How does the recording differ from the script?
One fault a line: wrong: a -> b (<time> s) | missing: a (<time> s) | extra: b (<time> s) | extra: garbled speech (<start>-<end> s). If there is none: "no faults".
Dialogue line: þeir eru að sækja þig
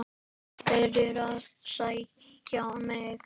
wrong: þig -> mig (2.9 s)